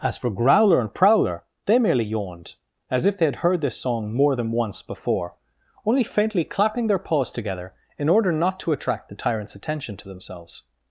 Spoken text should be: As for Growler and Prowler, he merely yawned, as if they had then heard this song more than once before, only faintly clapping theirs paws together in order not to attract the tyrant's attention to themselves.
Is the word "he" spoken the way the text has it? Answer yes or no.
no